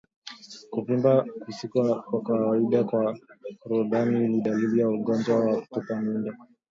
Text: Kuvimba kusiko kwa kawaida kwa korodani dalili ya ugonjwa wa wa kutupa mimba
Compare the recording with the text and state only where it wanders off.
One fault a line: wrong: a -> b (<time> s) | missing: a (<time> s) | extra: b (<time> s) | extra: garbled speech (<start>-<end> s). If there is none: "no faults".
extra: ni (4.3 s)
missing: wa (5.6 s)